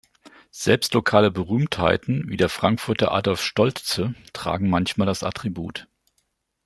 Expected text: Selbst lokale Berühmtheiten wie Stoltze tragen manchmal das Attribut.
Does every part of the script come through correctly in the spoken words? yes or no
no